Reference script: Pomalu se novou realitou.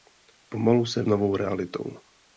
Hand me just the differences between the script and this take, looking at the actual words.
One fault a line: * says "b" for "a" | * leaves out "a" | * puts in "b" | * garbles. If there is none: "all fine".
all fine